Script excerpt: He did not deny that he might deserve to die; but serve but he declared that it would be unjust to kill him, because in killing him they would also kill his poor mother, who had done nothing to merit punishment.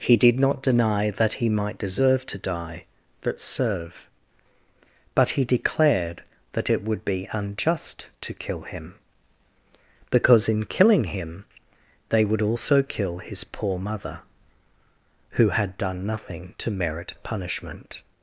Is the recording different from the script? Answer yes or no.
no